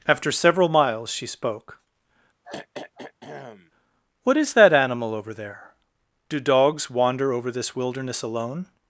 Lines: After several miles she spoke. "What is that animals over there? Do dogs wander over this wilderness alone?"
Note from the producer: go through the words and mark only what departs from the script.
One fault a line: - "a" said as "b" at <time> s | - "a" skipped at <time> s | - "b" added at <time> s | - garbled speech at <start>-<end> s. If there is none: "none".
- "animals" said as "animal" at 4.7 s